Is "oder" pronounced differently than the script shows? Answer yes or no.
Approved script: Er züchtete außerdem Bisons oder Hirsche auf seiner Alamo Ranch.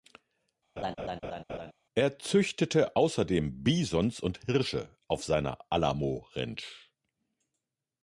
yes